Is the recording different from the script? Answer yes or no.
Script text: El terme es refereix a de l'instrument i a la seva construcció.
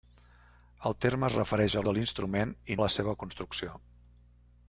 no